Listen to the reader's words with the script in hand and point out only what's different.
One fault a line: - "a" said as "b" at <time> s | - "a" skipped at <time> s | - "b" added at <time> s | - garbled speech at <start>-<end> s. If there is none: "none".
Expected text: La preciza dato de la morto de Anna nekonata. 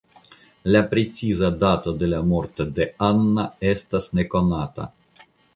- "estas" added at 3.8 s